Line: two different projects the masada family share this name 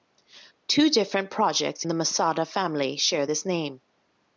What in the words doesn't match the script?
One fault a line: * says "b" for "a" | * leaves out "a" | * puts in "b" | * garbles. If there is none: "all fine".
all fine